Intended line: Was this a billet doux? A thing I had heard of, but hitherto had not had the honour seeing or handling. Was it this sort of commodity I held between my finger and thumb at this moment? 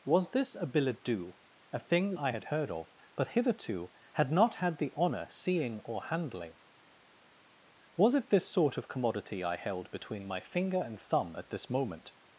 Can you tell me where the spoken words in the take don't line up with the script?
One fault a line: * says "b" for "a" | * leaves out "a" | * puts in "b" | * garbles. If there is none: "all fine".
all fine